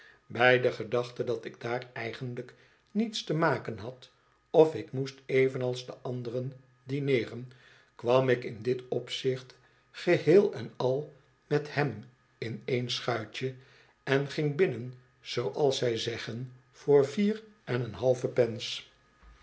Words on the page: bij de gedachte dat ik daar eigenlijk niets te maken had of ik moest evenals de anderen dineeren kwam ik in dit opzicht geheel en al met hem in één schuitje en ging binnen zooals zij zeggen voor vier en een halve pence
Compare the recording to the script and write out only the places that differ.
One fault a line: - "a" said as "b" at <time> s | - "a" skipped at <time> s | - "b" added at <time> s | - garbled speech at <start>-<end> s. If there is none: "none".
none